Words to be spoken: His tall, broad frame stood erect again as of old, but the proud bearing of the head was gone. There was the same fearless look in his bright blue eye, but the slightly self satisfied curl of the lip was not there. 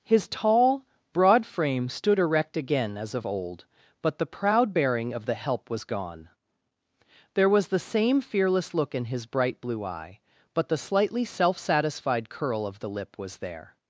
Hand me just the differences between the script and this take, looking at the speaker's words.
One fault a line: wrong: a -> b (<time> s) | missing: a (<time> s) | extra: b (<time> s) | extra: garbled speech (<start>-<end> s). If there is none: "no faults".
wrong: head -> help (5.3 s)
missing: not (13.4 s)